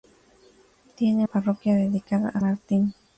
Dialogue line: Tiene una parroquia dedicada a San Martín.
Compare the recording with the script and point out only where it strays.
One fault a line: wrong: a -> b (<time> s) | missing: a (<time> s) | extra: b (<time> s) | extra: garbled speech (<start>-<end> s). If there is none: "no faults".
missing: una (1.3 s)
missing: San (2.4 s)